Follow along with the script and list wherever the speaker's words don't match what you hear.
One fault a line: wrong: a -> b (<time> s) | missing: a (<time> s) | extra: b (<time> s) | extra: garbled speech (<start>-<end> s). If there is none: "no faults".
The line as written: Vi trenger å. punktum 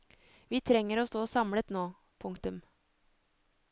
extra: stå samlet nå (1.0 s)